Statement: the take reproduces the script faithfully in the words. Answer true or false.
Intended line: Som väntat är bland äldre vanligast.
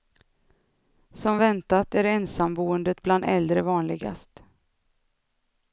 false